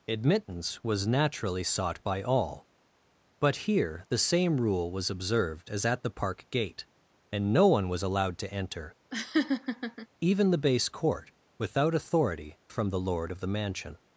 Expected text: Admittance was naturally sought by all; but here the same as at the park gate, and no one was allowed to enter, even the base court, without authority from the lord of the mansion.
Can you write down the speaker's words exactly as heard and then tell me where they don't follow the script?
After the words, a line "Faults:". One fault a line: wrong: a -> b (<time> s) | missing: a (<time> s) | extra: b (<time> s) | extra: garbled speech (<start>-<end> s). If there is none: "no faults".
Admittance was naturally sought by all; but here the same rule was observed as at the park gate, and no one was allowed to enter, even the base court, without authority from the lord of the mansion.
Faults:
extra: rule was observed (4.5 s)